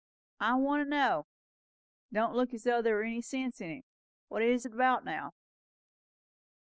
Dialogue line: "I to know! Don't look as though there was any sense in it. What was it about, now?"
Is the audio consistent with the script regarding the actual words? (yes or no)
no